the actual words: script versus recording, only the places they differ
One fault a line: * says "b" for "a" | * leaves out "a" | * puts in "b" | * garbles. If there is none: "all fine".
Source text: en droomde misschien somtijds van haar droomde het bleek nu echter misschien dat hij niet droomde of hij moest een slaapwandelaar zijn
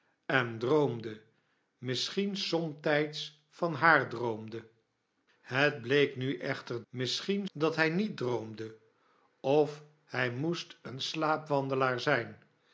all fine